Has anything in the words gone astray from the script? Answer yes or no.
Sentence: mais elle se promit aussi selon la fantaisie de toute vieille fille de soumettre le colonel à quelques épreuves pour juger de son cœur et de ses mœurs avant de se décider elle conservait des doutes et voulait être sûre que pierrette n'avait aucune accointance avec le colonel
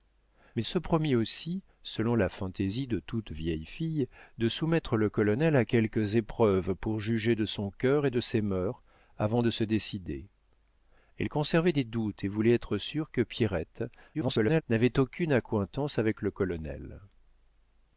yes